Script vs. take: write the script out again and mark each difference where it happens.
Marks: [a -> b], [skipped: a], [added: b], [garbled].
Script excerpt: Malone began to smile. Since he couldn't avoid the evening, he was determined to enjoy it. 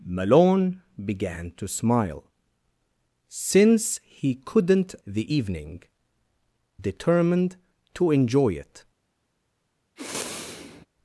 Malone began to smile. Since he couldn't [skipped: avoid] the evening, [skipped: he was] determined to enjoy it.